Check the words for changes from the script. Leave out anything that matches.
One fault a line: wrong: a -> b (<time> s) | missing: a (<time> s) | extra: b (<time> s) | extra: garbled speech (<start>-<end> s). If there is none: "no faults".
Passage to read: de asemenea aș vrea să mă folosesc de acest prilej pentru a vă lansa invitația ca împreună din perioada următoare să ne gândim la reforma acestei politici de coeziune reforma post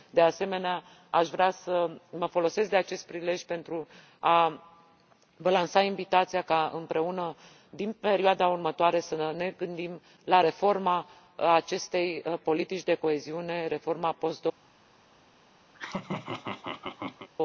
no faults